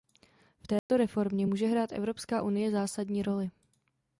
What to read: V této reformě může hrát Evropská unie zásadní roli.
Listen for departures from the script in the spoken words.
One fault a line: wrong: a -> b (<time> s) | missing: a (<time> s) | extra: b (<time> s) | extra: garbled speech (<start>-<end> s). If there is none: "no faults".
no faults